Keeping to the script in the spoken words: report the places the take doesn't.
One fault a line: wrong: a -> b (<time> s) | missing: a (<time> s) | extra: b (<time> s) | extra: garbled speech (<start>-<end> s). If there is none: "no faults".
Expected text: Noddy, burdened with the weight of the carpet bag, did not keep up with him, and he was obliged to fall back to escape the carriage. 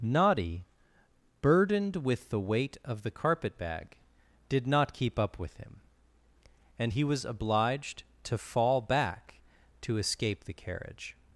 no faults